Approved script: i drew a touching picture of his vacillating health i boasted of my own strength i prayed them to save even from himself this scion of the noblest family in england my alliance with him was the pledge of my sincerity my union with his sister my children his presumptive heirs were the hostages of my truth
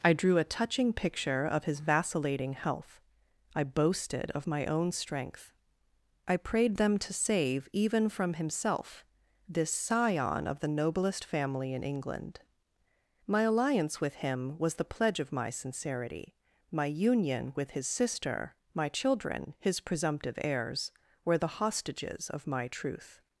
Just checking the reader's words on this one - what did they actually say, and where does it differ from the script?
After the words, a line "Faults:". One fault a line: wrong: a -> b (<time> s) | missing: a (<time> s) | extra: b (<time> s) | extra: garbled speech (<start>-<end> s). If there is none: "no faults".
i drew a touching picture of his vacillating health i boasted of my own strength i prayed them to save even from himself this scion of the noblest family in england my alliance with him was the pledge of my sincerity my union with his sister my children his presumptive heirs were the hostages of my truth
Faults:
no faults